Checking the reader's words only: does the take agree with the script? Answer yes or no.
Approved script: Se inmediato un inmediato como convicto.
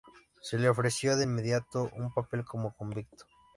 no